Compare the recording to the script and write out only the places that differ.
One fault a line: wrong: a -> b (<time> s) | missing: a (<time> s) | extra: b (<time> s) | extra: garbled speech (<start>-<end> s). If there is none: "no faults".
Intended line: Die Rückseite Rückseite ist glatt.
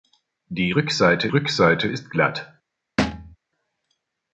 no faults